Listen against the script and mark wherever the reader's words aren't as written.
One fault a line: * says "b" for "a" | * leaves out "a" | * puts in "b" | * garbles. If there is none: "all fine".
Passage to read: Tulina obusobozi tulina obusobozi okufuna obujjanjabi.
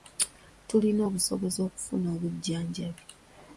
* leaves out "tulina obusobozi"